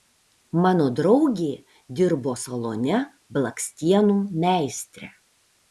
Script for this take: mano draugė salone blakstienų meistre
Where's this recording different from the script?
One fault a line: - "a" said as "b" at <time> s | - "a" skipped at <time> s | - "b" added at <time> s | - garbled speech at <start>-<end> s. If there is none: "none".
- "dirbo" added at 2.0 s